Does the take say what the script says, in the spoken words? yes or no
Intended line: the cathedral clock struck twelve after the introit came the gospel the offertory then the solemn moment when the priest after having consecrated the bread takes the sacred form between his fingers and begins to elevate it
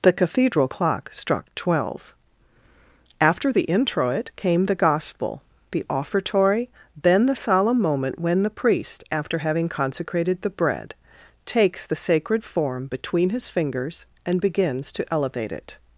yes